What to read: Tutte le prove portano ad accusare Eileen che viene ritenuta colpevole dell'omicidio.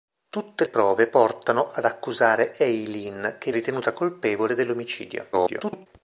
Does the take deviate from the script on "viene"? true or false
true